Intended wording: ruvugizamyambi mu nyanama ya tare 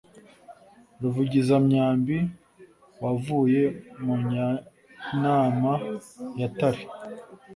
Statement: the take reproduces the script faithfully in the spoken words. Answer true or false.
false